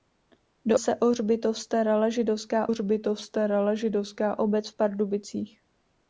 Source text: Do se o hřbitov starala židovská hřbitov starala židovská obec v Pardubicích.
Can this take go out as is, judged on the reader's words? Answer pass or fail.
pass